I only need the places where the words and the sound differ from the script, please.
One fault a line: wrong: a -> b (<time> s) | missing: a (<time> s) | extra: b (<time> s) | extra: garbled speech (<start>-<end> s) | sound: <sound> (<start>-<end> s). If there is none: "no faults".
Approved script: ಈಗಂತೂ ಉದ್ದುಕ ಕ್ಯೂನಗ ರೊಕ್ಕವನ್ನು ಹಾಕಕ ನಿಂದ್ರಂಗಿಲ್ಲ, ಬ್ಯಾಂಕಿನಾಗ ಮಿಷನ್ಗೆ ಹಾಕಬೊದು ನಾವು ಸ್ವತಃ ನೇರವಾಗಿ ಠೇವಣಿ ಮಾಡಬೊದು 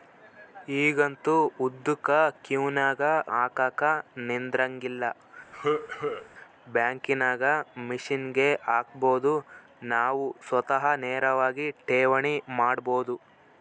missing: ರೊಕ್ಕವನ್ನು (3.0 s)
sound: cough (5.5-6.3 s)